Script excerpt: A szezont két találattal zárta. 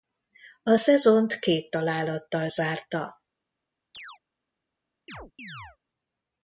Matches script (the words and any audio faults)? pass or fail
fail